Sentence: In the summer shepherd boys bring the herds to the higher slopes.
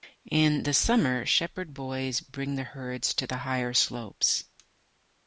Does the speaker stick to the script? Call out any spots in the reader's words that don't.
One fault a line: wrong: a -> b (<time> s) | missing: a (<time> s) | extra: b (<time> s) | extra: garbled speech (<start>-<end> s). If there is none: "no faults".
no faults